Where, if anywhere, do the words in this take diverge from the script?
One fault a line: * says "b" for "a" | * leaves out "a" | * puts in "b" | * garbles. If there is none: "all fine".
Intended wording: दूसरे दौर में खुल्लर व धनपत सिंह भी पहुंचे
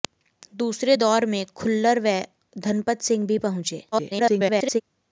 * garbles